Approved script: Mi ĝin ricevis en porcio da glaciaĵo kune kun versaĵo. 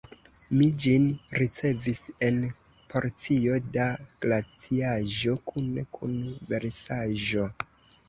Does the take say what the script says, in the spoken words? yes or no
yes